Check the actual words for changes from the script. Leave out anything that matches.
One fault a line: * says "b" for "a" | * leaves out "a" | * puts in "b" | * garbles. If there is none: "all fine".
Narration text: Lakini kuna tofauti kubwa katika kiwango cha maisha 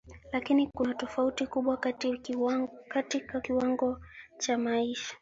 all fine